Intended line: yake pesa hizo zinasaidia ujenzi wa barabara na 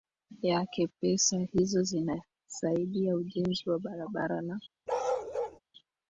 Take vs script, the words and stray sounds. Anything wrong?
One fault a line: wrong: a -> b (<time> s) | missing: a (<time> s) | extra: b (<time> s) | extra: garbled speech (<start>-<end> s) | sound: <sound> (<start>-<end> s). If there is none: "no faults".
sound: bark (4.9-5.6 s)